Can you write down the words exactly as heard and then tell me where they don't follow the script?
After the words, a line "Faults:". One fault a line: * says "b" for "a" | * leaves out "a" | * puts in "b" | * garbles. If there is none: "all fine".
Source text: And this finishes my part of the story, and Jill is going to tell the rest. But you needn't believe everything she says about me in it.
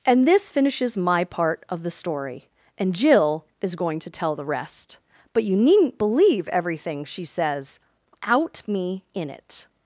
And this finishes my part of the story, and Jill is going to tell the rest. But you needn't believe everything she says out me in it.
Faults:
* says "out" for "about"